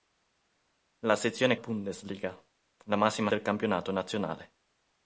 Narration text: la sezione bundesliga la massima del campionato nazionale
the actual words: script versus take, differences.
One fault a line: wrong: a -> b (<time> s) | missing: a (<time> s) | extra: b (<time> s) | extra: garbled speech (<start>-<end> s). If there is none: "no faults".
no faults